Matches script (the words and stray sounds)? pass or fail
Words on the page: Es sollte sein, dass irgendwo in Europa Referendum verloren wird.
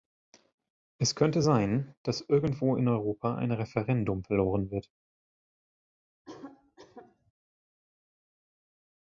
fail